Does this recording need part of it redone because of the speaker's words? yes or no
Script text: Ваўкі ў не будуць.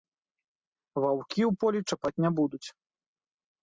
yes